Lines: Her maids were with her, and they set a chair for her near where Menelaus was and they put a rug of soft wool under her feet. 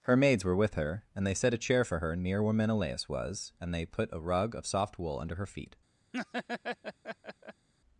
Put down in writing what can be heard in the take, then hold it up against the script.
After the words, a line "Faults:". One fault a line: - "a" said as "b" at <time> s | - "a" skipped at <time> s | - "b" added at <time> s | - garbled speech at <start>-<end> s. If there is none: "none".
Her maids were with her, and they set a chair for her near where Menelaus was and they put a rug of soft wool under her feet.
Faults:
none